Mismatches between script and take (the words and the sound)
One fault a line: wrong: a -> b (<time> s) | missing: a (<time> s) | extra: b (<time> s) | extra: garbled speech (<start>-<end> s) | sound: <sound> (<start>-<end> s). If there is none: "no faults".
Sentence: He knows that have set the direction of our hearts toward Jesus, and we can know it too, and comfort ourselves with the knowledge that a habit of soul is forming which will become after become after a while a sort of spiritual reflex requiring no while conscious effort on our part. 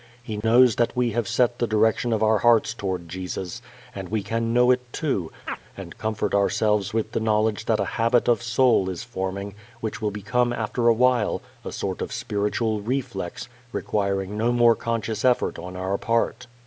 sound: dropout (0.4-0.4 s)
extra: we (0.9 s)
sound: chirp (5.5-5.6 s)
missing: become after (10.9 s)
wrong: while -> more (14.5 s)